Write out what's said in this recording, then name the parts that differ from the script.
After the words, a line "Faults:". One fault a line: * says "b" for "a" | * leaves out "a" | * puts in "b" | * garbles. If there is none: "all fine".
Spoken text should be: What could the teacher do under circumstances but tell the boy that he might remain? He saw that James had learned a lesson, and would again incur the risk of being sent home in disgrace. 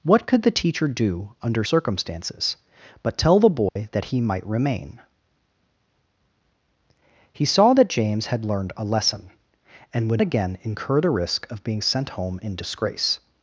What could the teacher do under circumstances but tell the boy that he might remain? He saw that James had learned a lesson, and would again incur the risk of being sent home in disgrace.
Faults:
all fine